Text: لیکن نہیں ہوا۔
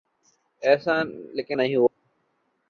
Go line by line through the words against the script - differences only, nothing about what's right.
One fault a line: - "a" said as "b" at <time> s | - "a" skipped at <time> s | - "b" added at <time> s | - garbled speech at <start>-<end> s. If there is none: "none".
none